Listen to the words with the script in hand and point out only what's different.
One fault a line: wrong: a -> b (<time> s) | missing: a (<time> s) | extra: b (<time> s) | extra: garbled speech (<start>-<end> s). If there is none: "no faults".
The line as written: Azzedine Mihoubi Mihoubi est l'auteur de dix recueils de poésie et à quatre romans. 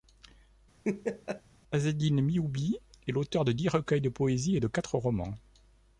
missing: Mihoubi (2.8 s)
wrong: à -> de (4.6 s)